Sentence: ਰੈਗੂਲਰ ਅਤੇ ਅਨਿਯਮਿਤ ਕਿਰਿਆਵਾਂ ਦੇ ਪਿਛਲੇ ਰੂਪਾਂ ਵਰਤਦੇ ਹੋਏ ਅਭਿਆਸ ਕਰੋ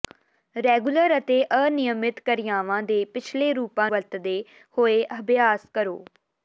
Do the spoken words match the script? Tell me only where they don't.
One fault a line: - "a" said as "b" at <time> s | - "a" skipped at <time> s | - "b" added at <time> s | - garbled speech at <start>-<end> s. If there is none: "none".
none